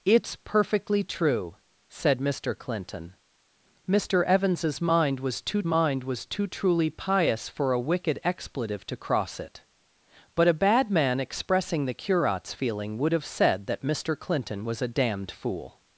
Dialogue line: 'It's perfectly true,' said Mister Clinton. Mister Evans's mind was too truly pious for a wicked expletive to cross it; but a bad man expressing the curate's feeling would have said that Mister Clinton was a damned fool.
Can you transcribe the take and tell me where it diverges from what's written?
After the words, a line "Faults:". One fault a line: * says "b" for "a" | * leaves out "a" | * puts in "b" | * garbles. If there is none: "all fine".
'It's perfectly true,' said Mister Clinton. Mister Evans's mind was too mind was too truly pious for a wicked expletive to cross it; but a bad man expressing the curate's feeling would have said that Mister Clinton was a damned fool.
Faults:
* puts in "mind was too"